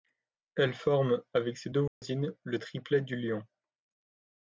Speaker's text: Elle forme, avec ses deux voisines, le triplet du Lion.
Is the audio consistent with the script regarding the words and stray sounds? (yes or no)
no